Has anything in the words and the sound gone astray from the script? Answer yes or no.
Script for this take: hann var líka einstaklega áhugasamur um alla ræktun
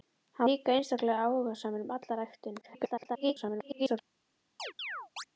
yes